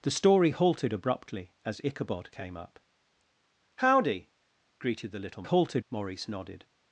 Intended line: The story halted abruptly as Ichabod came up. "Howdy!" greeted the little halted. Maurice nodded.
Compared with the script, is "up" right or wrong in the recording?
right